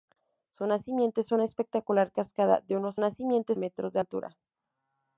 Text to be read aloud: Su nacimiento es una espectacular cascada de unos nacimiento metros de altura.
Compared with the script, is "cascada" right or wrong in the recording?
right